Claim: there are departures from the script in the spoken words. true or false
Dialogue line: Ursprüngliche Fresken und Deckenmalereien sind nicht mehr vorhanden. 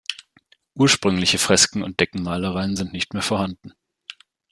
false